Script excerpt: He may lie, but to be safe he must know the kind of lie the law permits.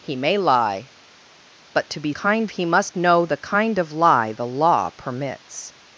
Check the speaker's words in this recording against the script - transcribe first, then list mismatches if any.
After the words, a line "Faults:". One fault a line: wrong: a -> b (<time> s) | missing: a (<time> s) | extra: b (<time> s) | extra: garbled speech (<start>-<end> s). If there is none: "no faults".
He may lie, but to be kind he must know the kind of lie the law permits.
Faults:
wrong: safe -> kind (2.1 s)